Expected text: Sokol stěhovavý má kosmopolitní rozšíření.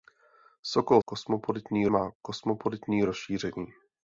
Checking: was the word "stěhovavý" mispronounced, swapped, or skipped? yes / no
yes